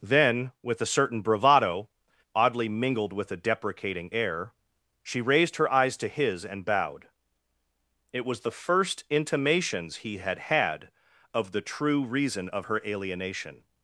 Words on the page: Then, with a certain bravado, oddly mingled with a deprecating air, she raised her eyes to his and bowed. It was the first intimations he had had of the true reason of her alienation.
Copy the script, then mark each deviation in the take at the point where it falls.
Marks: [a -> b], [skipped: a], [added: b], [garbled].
Then, with a certain bravado, oddly mingled with a deprecating air, she raised her eyes to his and bowed. It was the first intimations he had had of the true reason of her alienation.